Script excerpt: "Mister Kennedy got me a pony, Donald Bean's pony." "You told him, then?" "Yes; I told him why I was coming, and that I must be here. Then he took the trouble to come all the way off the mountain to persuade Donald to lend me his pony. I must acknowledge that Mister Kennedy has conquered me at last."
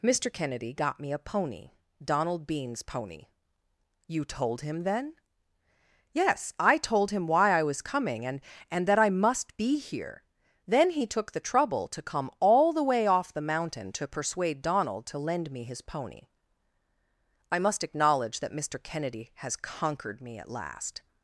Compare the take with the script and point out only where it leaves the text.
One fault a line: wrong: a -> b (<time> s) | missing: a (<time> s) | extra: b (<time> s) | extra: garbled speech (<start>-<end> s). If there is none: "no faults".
extra: and (8.7 s)